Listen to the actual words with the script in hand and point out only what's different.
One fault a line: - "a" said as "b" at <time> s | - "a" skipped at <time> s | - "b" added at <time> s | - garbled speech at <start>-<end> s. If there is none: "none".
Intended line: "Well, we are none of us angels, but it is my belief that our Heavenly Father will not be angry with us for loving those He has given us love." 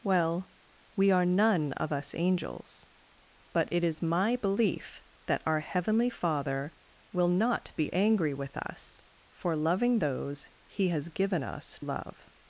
none